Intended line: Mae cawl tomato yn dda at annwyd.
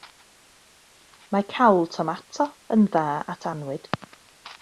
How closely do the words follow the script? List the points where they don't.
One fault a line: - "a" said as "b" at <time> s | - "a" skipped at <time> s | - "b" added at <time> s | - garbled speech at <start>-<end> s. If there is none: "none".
none